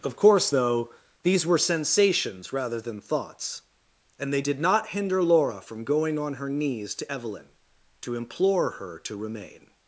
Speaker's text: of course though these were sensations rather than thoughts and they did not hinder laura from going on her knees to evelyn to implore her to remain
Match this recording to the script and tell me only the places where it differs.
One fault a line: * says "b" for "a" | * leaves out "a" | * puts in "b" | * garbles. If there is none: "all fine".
all fine